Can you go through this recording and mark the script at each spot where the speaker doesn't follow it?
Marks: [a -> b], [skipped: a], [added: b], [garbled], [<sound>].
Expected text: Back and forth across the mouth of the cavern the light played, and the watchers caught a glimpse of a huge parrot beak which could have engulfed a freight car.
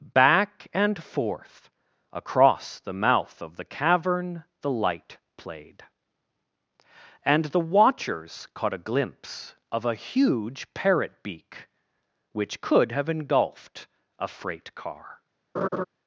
Back and forth across the mouth of the cavern the light played, and the watchers caught a glimpse of a huge parrot beak which could have engulfed a freight car. [laugh]